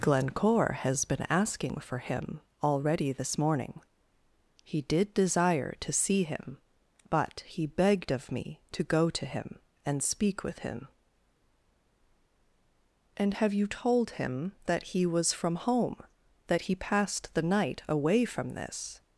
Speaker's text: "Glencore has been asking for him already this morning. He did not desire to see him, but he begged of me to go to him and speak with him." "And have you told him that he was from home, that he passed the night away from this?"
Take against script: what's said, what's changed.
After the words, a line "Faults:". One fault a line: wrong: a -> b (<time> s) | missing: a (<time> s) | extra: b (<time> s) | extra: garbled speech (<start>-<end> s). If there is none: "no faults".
"Glencore has been asking for him already this morning. He did desire to see him, but he begged of me to go to him and speak with him." "And have you told him that he was from home, that he passed the night away from this?"
Faults:
missing: not (5.1 s)